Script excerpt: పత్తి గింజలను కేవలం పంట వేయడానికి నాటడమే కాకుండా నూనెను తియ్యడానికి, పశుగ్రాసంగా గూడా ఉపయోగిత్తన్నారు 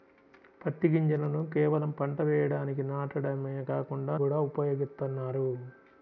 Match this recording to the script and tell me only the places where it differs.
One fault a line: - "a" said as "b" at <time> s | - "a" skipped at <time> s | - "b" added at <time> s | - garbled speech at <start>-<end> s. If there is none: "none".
- "నూనెను తియ్యడానికి పశుగ్రాసంగా" skipped at 4.2 s